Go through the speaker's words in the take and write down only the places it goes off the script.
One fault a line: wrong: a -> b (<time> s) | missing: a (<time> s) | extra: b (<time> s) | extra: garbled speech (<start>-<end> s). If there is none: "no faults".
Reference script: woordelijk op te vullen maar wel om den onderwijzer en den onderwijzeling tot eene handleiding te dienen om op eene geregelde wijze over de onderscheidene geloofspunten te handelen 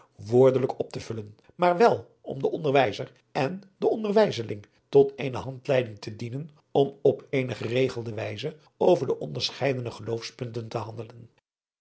no faults